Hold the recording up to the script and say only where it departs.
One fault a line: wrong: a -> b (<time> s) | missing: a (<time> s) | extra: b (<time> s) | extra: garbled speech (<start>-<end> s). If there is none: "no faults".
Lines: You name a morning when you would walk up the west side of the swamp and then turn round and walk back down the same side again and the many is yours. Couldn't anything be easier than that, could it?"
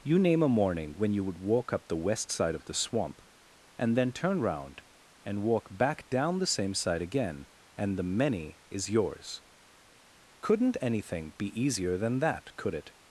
no faults